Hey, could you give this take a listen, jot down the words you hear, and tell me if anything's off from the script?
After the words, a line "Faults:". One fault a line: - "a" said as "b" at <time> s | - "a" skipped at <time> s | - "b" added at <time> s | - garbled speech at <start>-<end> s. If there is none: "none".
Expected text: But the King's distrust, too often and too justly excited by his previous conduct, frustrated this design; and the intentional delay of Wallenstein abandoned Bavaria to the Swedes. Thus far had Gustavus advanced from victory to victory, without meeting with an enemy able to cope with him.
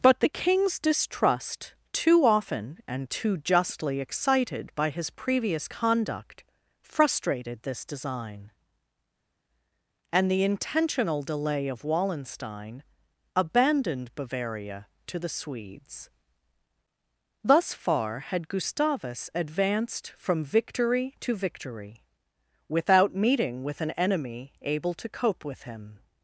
But the King's distrust, too often and too justly excited by his previous conduct, frustrated this design; and the intentional delay of Wallenstein abandoned Bavaria to the Swedes. Thus far had Gustavus advanced from victory to victory, without meeting with an enemy able to cope with him.
Faults:
none